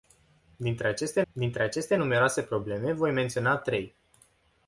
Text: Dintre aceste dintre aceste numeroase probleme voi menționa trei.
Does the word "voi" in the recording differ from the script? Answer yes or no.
no